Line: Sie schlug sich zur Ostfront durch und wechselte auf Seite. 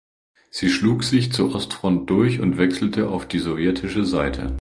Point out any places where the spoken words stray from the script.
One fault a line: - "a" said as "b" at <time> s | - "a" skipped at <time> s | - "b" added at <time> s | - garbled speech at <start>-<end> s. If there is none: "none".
- "die sowjetische" added at 3.3 s